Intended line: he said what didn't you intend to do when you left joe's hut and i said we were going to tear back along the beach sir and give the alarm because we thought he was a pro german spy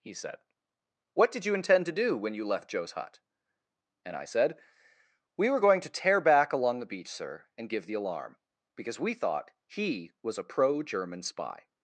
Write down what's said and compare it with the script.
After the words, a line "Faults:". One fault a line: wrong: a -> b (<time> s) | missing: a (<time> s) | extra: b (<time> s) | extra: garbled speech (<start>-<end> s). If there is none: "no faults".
he said what did you intend to do when you left joe's hut and i said we were going to tear back along the beach sir and give the alarm because we thought he was a pro german spy
Faults:
wrong: didn't -> did (1.3 s)